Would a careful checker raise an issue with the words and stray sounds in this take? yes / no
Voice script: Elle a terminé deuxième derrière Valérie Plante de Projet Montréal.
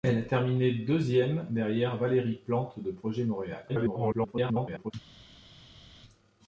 yes